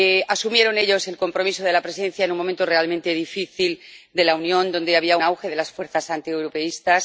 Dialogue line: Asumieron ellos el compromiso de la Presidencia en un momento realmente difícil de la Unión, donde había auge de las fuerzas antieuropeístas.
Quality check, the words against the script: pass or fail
pass